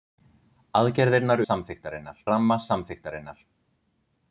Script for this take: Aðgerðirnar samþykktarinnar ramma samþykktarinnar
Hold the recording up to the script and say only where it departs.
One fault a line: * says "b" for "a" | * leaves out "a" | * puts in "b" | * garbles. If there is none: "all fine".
all fine